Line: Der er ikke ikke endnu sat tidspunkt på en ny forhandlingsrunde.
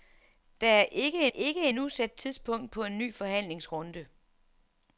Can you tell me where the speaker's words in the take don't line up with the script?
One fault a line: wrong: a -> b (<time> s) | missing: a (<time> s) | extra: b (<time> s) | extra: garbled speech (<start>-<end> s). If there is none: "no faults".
no faults